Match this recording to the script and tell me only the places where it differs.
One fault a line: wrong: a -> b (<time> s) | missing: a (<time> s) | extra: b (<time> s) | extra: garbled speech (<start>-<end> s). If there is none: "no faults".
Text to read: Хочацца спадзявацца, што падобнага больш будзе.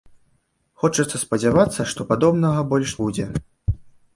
no faults